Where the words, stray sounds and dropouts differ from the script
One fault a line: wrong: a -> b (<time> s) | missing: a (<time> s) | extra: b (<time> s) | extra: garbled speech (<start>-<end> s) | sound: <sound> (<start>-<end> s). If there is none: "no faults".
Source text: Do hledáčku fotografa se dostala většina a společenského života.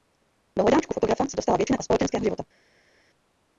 no faults